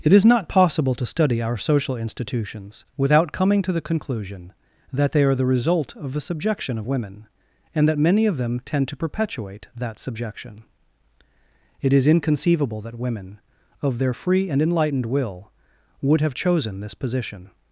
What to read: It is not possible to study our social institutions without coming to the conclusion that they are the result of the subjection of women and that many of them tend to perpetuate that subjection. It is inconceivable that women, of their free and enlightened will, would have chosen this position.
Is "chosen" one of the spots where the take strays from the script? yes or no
no